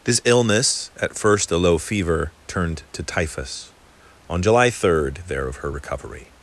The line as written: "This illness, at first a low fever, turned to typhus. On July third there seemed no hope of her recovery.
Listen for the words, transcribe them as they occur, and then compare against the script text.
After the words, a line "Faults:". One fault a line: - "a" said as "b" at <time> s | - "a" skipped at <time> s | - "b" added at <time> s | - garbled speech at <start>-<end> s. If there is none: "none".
"This illness, at first a low fever, turned to typhus. On July third there of her recovery.
Faults:
- "seemed no hope" skipped at 5.5 s